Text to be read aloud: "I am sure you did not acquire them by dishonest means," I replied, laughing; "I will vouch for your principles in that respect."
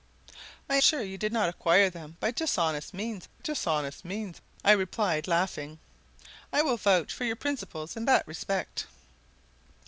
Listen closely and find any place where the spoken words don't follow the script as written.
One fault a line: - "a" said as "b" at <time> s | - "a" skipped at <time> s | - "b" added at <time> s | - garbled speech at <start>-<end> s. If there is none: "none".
- "am" skipped at 0.8 s
- "dishonest means" added at 3.4 s